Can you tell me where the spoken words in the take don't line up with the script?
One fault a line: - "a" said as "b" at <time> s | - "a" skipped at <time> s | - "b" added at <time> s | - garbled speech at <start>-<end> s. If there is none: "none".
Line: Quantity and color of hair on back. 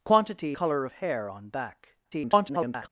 - "and" skipped at 0.6 s
- garbled speech at 2.0-2.9 s